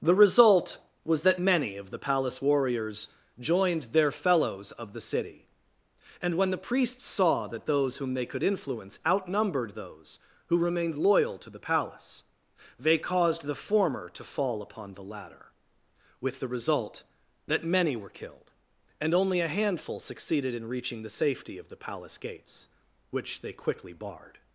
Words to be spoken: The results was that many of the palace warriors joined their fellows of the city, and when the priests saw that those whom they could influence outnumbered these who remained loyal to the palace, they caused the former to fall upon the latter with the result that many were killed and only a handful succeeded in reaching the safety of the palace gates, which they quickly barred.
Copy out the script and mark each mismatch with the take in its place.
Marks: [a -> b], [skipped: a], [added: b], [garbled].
The [results -> result] was that many of the palace warriors joined their fellows of the city, and when the priests saw that those whom they could influence outnumbered [these -> those] who remained loyal to the palace, they caused the former to fall upon the latter with the result that many were killed and only a handful succeeded in reaching the safety of the palace gates, which they quickly barred.